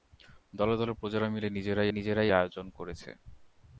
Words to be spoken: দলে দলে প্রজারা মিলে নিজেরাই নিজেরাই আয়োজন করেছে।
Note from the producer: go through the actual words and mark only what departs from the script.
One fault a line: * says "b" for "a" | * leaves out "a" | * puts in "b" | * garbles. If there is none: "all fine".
all fine